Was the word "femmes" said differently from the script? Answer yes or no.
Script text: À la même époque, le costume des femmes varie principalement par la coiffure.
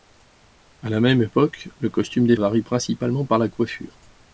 yes